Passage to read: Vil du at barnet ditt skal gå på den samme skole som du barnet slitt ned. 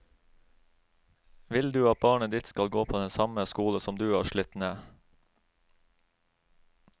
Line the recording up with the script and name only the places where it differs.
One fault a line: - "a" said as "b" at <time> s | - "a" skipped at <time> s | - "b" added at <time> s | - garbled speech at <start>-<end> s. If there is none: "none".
- "barnet" said as "har" at 4.1 s